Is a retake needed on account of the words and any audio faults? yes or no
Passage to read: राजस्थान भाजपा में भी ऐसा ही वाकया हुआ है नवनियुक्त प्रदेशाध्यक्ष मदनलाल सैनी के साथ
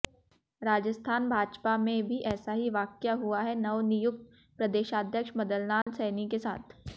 yes